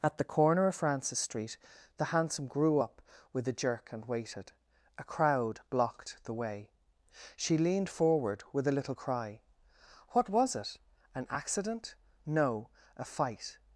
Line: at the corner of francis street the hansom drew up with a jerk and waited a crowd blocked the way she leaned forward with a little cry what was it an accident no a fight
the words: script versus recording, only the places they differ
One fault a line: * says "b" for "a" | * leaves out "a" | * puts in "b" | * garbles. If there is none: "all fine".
* says "grew" for "drew"